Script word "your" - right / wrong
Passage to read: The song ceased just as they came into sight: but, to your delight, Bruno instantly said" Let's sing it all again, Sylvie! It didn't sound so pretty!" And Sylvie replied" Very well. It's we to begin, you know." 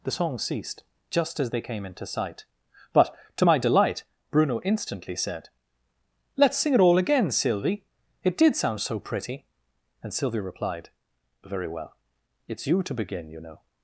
wrong